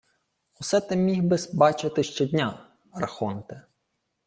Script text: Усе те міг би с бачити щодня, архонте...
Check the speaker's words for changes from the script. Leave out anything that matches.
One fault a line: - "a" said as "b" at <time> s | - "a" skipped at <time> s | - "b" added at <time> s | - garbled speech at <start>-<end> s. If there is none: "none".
none